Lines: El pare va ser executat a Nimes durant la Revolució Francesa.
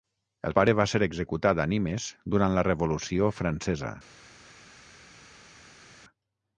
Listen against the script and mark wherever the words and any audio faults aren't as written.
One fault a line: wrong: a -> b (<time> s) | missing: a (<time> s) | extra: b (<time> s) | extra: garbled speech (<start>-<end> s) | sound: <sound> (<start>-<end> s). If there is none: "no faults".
no faults